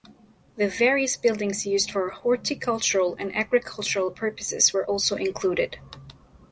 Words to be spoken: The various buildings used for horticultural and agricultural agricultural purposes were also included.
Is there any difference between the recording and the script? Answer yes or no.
yes